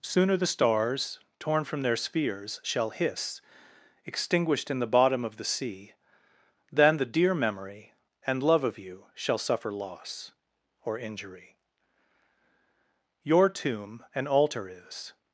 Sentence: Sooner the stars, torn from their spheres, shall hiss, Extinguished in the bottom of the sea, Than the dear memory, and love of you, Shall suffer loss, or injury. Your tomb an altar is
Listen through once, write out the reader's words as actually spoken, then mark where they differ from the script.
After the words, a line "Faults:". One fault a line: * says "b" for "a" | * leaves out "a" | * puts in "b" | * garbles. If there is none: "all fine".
Sooner the stars, torn from their spheres, shall hiss, Extinguished in the bottom of the sea, Than the dear memory, and love of you, Shall suffer loss, or injury. Your tomb an altar is
Faults:
all fine